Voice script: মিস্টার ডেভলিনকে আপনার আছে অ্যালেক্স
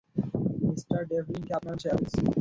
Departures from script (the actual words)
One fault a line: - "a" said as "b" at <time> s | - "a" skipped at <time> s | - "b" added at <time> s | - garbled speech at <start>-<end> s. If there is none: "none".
none